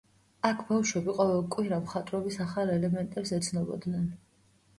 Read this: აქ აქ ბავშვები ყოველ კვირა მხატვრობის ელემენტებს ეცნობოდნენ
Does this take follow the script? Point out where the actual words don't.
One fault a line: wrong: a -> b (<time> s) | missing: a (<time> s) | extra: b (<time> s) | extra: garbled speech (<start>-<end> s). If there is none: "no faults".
missing: აქ (0.6 s)
extra: ახალ (2.5 s)